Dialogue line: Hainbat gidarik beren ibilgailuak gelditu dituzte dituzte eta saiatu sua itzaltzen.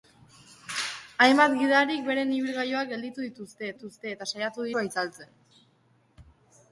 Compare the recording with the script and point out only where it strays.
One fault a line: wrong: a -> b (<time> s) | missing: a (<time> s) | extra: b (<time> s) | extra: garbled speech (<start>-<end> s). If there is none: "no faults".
no faults